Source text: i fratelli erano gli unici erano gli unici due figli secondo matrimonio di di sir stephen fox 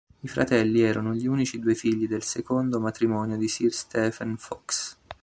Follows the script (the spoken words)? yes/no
no